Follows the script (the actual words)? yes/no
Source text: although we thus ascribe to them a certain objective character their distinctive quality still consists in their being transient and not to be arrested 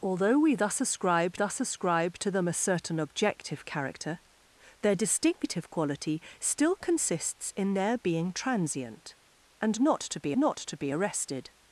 no